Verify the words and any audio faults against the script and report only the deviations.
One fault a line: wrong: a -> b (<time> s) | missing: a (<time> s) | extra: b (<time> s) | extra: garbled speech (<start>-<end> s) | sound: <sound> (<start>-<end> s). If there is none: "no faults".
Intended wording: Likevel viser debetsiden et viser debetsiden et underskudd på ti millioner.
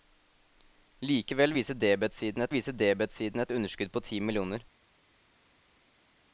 no faults